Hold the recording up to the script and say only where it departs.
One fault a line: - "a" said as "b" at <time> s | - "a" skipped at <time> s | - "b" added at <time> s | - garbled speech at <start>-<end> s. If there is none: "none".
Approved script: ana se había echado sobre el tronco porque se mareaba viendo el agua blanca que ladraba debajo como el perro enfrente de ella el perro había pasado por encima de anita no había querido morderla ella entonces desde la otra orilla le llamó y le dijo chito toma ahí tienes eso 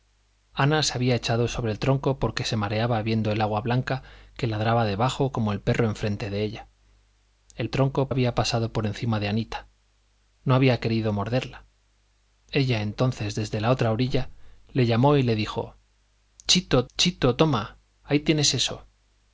- "perro" said as "tronco" at 7.7 s
- "chito" added at 17.0 s